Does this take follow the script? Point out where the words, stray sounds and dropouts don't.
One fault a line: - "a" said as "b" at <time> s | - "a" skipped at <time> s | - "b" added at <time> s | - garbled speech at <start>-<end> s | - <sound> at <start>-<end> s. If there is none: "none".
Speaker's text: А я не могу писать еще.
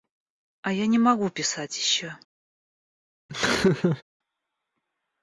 - laugh at 3.3-4.0 s